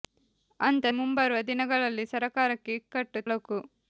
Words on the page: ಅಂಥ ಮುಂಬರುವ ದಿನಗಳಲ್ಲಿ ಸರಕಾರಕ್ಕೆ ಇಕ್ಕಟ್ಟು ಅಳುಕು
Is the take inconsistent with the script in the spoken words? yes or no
no